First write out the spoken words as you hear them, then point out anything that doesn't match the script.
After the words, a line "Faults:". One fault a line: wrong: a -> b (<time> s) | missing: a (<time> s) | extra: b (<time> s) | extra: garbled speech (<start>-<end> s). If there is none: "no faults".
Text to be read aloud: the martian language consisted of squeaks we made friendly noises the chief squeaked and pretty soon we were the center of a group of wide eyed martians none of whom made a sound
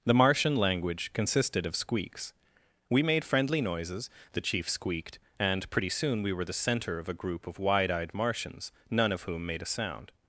the martian language consisted of squeaks we made friendly noises the chief squeaked and pretty soon we were the center of a group of wide eyed martians none of whom made a sound
Faults:
no faults